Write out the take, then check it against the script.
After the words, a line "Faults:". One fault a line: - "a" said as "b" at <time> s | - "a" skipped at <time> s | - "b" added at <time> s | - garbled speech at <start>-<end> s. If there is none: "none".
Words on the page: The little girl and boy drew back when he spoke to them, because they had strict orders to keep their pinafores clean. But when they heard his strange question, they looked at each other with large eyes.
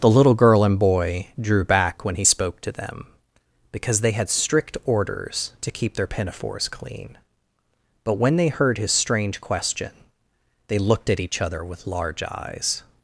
The little girl and boy drew back when he spoke to them, because they had strict orders to keep their pinafores clean. But when they heard his strange question, they looked at each other with large eyes.
Faults:
none